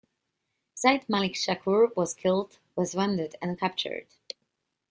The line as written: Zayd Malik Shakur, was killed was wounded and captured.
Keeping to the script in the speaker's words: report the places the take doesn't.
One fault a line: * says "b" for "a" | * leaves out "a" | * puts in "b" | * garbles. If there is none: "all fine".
all fine